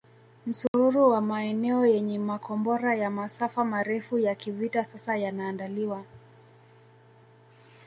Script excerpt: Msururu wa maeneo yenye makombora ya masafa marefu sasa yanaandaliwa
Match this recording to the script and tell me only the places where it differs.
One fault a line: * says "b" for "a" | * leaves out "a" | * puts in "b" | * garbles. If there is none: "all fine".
* puts in "ya kivita"